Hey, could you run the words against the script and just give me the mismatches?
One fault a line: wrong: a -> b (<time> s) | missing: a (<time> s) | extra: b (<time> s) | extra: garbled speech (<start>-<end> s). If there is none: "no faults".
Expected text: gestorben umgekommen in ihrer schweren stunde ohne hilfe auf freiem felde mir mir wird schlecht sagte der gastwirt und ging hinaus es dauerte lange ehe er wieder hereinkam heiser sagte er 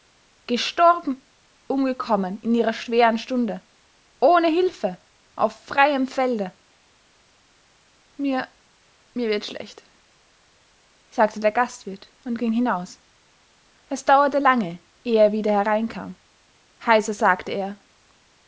no faults